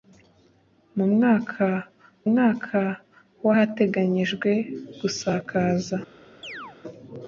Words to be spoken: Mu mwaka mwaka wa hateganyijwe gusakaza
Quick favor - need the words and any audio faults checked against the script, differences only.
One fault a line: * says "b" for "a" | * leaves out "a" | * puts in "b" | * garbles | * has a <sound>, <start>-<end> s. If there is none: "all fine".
* has a chirp, 6.4-6.8 s